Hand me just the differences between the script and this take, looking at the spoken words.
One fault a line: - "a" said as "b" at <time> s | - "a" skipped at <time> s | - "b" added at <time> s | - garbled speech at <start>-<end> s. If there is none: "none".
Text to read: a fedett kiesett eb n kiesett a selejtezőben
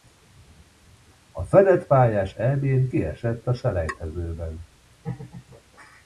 - "kiesett" said as "pályás" at 1.9 s